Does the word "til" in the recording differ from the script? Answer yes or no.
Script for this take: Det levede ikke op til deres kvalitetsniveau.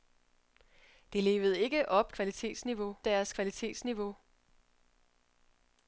yes